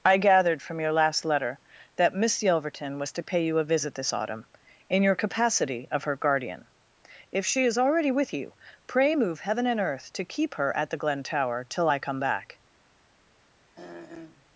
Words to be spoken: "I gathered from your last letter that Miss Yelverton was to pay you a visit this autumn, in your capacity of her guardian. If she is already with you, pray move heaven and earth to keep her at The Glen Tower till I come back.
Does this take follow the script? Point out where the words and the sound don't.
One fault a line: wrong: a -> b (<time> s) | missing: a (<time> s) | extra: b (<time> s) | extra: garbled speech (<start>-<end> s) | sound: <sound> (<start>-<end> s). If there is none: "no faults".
sound: throat clearing (13.8-14.5 s)